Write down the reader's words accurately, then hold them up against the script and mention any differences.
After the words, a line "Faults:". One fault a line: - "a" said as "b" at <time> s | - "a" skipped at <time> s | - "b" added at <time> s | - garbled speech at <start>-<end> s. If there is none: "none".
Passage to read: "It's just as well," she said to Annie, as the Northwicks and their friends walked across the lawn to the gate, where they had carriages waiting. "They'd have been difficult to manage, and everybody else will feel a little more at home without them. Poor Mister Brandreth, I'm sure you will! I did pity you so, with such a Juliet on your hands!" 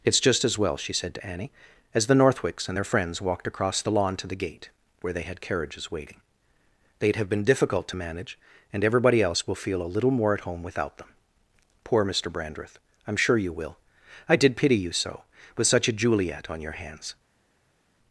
"It's just as well," she said to Annie, as the Northwicks and their friends walked across the lawn to the gate, where they had carriages waiting. "They'd have been difficult to manage, and everybody else will feel a little more at home without them. Poor Mister Brandreth, I'm sure you will! I did pity you so, with such a Juliet on your hands!"
Faults:
none